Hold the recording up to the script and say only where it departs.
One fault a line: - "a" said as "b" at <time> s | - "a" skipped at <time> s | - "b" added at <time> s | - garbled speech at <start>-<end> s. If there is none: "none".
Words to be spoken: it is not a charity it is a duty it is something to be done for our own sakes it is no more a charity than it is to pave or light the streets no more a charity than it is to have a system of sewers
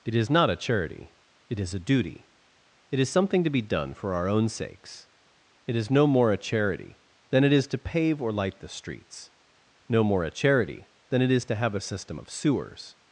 none